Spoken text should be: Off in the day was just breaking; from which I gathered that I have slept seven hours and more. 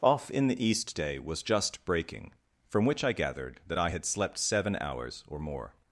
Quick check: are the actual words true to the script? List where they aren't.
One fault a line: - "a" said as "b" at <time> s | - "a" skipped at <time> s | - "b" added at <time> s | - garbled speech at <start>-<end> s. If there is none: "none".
- "east" added at 0.7 s
- "have" said as "had" at 3.9 s
- "and" said as "or" at 5.3 s